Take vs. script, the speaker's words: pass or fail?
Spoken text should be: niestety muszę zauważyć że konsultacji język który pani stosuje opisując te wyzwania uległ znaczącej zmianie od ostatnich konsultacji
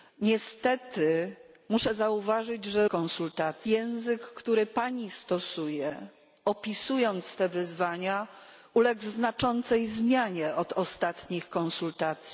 pass